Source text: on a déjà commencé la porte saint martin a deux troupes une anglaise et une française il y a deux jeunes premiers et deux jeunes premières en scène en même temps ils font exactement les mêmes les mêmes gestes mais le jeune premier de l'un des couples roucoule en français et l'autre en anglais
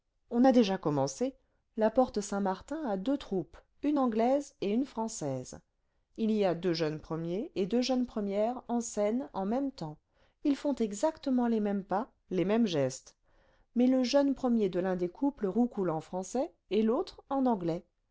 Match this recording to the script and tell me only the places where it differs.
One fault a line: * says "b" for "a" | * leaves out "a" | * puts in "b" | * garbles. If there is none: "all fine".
* puts in "pas"